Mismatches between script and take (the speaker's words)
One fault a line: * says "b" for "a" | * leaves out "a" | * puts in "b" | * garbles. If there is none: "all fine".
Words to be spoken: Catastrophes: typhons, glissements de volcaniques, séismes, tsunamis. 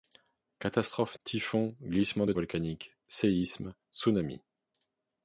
all fine